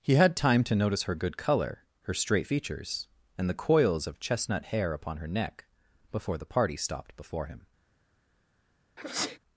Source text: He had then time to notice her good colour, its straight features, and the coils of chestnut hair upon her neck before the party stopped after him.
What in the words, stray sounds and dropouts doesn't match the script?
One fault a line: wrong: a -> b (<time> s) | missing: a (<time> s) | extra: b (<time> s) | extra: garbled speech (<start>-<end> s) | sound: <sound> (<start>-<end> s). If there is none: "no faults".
missing: then (0.3 s)
wrong: its -> her (2.0 s)
wrong: after -> before (7.2 s)
sound: sneeze (9.0-9.4 s)